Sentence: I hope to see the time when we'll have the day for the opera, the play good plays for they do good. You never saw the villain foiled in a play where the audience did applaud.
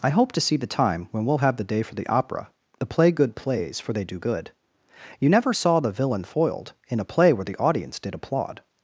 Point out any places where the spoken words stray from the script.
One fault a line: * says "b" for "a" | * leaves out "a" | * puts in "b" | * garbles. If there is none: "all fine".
all fine